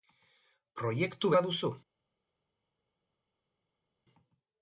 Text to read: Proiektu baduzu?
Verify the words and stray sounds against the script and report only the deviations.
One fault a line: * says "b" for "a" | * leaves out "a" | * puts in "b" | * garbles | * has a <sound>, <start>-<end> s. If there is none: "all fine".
all fine